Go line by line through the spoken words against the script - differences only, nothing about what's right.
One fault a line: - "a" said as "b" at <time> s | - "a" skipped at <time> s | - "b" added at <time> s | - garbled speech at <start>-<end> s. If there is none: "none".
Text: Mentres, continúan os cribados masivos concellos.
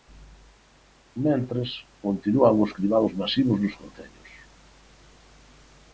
- "nos" added at 3.6 s